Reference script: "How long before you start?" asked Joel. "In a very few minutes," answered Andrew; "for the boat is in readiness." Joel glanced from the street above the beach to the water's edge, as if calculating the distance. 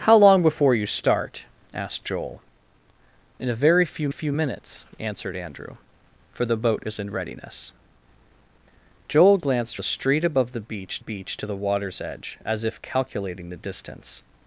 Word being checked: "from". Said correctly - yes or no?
no